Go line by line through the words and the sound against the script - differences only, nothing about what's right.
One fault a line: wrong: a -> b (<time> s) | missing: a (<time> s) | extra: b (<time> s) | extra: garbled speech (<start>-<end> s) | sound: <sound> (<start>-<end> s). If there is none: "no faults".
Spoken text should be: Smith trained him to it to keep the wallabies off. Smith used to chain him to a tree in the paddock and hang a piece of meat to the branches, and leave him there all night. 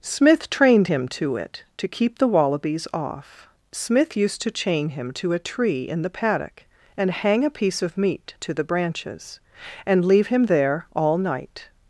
no faults